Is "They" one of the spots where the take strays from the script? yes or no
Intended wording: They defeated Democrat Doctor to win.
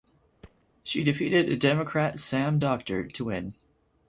yes